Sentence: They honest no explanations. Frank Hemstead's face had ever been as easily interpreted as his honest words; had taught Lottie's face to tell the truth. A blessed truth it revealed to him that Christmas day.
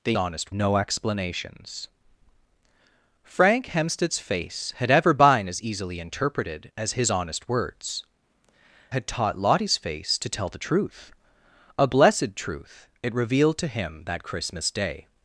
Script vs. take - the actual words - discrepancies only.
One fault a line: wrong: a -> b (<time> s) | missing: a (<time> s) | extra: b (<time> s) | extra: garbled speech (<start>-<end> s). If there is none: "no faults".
no faults